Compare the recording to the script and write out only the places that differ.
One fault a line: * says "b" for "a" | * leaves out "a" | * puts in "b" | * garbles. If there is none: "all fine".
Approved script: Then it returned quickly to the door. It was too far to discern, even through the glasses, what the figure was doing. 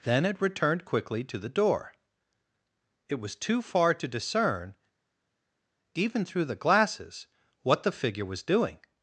all fine